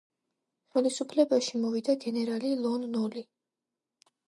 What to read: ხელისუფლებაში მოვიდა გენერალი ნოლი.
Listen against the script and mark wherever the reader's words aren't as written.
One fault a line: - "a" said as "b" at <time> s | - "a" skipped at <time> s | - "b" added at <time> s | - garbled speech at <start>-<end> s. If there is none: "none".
- "ლონ" added at 2.6 s